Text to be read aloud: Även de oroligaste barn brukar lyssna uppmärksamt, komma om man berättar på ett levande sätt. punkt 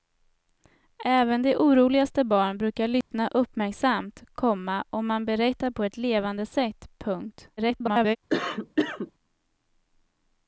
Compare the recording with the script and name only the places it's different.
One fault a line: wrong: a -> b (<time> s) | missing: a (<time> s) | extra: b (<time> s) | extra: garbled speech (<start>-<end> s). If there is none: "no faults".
extra: garbled speech (7.6-8.2 s)